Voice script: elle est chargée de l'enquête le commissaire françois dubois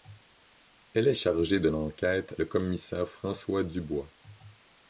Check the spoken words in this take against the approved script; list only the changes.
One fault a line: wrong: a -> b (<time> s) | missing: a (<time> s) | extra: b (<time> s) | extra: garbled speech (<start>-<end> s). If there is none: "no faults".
no faults